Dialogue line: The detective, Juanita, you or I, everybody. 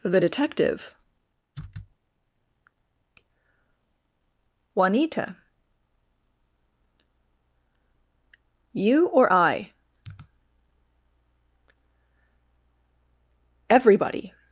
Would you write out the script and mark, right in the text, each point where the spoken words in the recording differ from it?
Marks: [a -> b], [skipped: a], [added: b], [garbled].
The detective, Juanita, you or I, everybody.